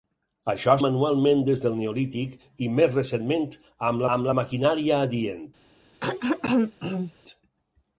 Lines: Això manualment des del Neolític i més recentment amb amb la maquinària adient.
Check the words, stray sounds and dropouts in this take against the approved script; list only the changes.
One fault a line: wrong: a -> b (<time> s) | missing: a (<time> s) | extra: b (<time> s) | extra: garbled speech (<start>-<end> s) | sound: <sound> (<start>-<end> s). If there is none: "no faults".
sound: throat clearing (6.0-7.1 s)